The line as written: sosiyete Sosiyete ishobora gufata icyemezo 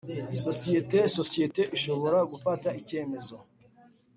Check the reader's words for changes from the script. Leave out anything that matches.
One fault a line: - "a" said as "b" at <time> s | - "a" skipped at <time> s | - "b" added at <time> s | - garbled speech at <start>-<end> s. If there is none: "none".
none